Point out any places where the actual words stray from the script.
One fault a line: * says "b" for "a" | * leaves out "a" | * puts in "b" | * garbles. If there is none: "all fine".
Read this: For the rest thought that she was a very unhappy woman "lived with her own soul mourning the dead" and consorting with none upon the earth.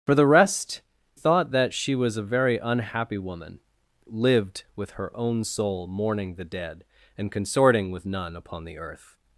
all fine